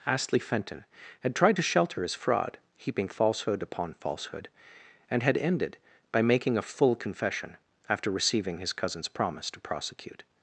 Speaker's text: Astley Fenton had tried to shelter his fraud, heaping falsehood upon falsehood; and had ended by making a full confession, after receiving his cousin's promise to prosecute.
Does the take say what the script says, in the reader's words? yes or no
yes